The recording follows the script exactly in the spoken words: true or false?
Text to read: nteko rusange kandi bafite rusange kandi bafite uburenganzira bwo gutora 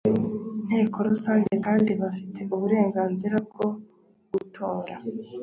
false